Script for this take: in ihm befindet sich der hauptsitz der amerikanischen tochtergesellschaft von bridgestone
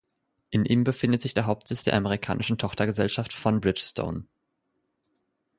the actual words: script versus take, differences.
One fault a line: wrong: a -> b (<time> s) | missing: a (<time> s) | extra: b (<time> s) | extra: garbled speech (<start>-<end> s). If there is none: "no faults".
no faults